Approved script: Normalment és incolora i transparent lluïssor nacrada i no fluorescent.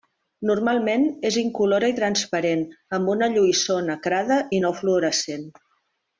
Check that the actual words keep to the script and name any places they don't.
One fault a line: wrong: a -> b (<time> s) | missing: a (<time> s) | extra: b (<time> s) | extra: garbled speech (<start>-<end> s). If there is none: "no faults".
extra: amb una (3.0 s)